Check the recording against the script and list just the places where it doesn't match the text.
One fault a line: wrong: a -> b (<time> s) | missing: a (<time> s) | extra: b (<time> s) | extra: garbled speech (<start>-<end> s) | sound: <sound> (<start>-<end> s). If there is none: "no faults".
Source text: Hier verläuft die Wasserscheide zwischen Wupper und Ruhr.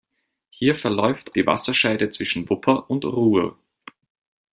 no faults